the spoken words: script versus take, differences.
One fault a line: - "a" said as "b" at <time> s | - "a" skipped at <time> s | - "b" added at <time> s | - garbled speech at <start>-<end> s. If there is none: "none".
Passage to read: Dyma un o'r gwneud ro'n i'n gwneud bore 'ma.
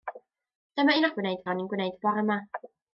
none